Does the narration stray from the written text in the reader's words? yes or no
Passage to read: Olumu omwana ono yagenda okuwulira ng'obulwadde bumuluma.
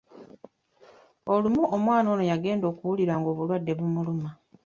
no